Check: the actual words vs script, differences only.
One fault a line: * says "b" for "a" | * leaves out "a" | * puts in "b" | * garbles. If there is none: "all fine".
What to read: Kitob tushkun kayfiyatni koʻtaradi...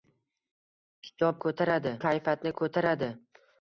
* says "koʻtaradi" for "tushkun"